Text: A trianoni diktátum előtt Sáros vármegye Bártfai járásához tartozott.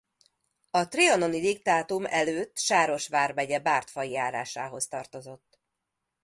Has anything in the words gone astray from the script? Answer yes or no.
no